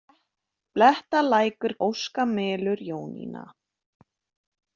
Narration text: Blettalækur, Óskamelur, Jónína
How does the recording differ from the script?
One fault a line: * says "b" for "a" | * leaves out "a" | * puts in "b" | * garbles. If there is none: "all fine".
all fine